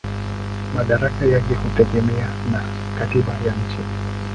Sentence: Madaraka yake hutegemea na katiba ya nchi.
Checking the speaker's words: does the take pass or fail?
pass